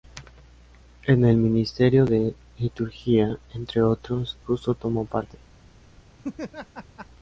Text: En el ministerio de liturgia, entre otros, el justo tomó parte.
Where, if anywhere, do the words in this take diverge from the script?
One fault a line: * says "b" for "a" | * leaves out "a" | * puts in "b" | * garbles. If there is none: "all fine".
* leaves out "el"